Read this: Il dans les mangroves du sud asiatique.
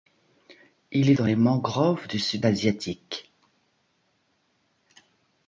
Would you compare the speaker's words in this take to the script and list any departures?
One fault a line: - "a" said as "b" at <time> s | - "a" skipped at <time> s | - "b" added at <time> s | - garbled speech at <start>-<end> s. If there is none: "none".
none